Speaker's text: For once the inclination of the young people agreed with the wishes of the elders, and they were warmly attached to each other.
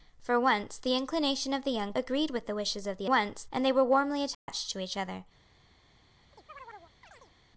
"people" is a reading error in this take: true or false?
true